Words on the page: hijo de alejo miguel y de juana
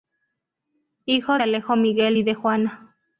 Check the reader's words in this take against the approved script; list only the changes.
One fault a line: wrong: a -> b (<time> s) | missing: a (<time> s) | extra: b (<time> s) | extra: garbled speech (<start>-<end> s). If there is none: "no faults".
no faults